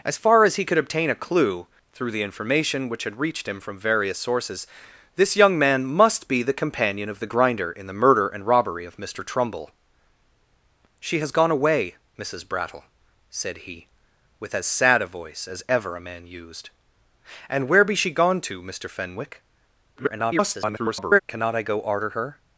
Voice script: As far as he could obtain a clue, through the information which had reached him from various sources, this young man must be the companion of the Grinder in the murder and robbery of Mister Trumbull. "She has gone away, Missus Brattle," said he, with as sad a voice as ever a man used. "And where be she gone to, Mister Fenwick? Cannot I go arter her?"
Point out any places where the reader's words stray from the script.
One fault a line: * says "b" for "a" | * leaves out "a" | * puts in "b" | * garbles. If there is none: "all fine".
* garbles